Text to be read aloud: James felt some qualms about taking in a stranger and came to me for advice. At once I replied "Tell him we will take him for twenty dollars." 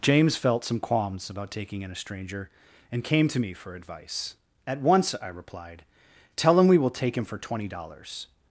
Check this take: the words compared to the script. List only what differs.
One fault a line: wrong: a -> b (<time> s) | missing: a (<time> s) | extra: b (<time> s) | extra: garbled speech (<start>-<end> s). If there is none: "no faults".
no faults